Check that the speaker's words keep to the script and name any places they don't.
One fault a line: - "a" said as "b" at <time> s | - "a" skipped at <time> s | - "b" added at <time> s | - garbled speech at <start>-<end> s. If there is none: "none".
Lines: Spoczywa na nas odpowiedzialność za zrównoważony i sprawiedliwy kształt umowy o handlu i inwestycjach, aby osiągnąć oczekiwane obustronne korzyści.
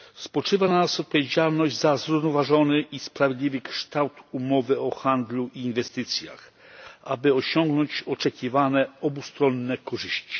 none